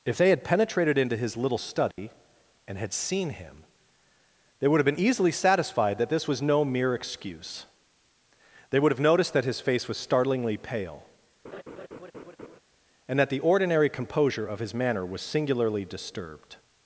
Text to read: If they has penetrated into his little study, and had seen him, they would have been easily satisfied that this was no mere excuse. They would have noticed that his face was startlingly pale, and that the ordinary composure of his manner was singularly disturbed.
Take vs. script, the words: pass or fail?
fail